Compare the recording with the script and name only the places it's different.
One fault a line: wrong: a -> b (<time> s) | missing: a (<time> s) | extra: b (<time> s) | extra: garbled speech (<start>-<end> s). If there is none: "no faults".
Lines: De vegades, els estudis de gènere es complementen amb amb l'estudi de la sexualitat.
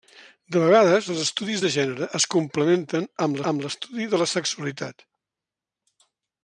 no faults